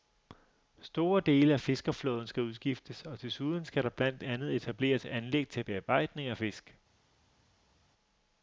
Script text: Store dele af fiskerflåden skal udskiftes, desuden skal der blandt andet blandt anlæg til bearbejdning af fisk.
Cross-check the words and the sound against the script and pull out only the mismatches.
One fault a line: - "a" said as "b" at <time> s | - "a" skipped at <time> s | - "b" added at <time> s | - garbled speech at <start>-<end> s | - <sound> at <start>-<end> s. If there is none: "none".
- "og" added at 3.0 s
- "blandt" said as "etableres" at 4.5 s